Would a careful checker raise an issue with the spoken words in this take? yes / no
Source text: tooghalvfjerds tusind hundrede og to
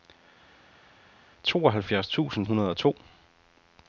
no